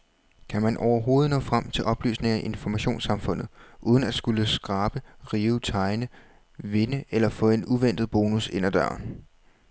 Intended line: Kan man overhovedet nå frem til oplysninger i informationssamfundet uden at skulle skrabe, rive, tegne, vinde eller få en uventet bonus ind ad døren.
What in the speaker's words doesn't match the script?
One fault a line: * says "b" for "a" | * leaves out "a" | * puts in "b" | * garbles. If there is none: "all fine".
all fine